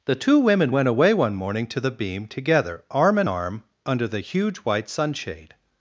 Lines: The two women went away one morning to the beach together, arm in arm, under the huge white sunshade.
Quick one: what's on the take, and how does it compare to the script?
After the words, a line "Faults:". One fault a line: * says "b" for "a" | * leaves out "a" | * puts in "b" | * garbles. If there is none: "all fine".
The two women went away one morning to the beam together, arm in arm, under the huge white sunshade.
Faults:
* says "beam" for "beach"